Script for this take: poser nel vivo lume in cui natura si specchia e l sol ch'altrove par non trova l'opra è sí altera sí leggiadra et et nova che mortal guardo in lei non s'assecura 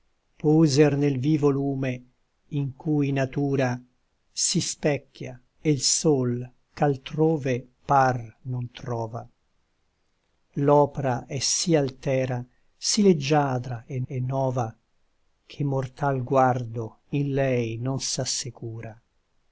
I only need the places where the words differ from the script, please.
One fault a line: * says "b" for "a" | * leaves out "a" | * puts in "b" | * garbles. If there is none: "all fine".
all fine